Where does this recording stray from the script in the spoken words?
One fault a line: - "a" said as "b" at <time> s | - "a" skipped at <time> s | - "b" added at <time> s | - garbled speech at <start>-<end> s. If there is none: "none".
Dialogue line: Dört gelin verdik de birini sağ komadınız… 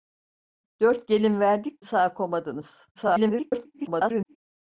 - "de birini" skipped at 1.9 s
- garbled speech at 3.0-4.4 s